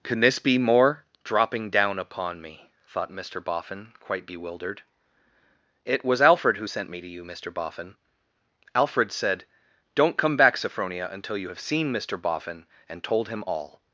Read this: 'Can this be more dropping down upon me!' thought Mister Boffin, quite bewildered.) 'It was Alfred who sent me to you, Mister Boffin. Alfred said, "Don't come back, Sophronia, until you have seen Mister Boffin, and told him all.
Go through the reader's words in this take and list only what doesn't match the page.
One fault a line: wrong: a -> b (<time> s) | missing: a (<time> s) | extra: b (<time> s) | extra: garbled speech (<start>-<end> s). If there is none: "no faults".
no faults